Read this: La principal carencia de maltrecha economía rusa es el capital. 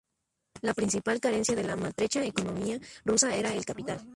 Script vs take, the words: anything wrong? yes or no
yes